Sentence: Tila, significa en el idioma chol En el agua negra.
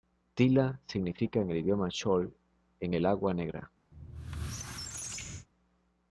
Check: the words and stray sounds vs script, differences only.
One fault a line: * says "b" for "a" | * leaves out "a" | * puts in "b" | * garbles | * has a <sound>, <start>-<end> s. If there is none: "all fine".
* has a squeak, 3.9-5.5 s